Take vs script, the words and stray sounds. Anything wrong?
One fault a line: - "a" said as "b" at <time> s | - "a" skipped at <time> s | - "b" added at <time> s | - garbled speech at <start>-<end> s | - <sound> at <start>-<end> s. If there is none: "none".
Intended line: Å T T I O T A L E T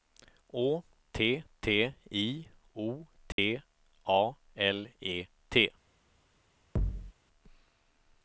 - dropout at 3.3-3.4 s
- thud at 6.8-7.1 s